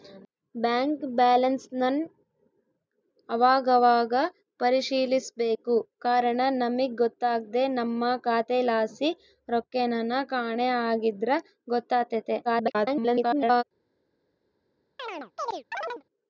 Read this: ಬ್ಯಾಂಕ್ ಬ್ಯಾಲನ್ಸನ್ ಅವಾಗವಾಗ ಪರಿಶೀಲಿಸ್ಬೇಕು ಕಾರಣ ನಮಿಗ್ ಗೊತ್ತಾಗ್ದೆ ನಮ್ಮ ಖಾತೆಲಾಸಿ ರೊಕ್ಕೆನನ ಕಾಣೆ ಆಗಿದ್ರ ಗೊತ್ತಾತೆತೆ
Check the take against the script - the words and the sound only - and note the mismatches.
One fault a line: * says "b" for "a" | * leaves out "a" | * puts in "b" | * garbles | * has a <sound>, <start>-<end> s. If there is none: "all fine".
* garbles
* has a chirp, 15.0-16.0 s